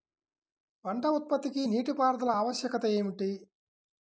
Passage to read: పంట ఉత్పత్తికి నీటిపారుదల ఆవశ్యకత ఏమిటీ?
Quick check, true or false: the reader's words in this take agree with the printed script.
true